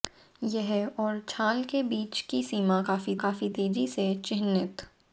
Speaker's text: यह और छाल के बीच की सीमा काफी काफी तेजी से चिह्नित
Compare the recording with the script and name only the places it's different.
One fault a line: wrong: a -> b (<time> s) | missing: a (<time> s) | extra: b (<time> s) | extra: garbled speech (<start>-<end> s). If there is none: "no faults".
no faults